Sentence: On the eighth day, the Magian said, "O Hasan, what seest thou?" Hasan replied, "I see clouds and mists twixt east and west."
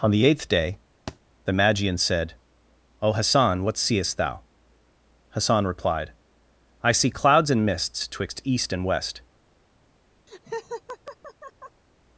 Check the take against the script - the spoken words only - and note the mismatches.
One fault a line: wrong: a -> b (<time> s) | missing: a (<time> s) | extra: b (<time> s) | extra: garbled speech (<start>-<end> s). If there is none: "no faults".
no faults